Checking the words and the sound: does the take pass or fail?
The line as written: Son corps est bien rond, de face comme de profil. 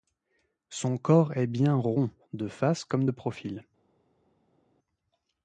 pass